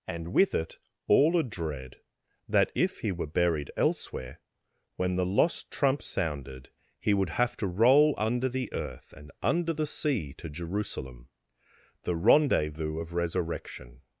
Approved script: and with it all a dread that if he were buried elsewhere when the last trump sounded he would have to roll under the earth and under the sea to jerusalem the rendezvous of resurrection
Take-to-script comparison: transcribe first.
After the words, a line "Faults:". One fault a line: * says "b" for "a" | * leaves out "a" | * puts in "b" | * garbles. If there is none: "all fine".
and with it all a dread that if he were buried elsewhere when the lost trump sounded he would have to roll under the earth and under the sea to jerusalem the rendezvous of resurrection
Faults:
* says "lost" for "last"